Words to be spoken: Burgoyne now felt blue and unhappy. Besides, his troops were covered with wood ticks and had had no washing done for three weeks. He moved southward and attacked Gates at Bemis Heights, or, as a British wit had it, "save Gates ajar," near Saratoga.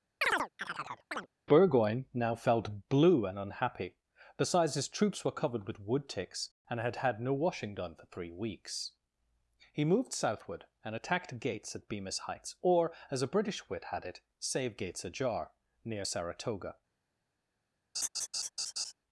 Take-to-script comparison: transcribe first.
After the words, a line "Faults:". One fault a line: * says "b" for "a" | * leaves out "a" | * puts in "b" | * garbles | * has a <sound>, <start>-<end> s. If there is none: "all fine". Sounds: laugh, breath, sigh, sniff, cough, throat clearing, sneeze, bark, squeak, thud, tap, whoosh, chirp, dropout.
Burgoyne now felt blue and unhappy. Besides, his troops were covered with wood ticks and had had no washing done for three weeks. He moved southward and attacked Gates at Bemis Heights, or, as a British wit had it, "save Gates ajar," near Saratoga.
Faults:
* has a chirp, 0.2-1.3 s
* has a laugh, 17.9-18.9 s